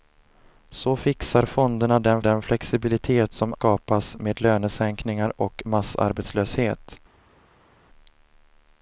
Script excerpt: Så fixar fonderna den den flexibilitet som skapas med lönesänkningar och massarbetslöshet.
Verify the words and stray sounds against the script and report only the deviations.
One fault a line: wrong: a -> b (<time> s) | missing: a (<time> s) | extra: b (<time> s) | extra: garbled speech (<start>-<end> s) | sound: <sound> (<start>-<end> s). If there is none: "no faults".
no faults